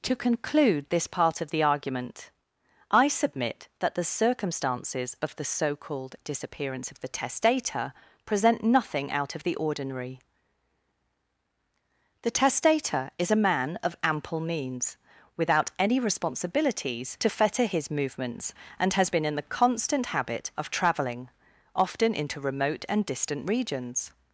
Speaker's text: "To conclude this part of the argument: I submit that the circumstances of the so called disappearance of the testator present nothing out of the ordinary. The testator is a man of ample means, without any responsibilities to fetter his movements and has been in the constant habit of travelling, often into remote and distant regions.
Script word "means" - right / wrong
right